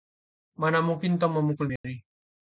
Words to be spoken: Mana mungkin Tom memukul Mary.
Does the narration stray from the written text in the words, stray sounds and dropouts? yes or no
yes